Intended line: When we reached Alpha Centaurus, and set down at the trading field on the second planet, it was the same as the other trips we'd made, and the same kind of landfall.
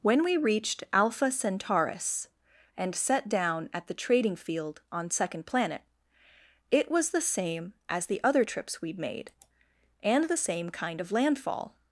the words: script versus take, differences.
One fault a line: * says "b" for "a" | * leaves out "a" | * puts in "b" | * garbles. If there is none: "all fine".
* leaves out "the"